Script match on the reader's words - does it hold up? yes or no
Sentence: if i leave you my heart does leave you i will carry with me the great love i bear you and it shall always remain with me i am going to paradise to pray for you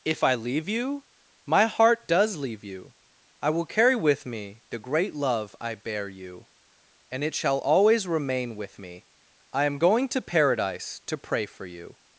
yes